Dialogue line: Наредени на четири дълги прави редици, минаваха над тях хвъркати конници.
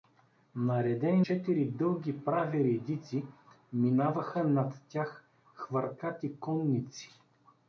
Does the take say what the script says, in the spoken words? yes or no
no